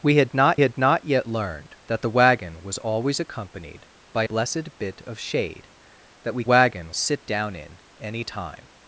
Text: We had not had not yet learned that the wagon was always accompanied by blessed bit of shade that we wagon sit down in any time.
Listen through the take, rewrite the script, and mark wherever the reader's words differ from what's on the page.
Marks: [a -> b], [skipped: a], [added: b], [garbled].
We had not had not yet learned that the wagon was always accompanied by blessed bit of shade that we wagon sit down in any time.